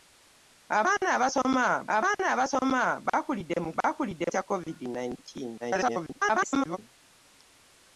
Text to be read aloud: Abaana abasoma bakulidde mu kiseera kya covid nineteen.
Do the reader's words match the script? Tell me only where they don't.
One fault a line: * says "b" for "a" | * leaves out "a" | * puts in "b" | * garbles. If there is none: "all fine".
* puts in "abaana abasoma"
* says "bakulidde" for "kiseera"
* garbles